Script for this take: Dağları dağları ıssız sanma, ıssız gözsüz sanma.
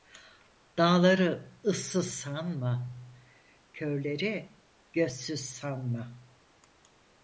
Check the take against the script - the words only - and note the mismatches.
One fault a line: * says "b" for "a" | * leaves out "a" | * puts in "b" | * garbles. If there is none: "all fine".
* leaves out "dağları"
* says "körleri" for "ıssız"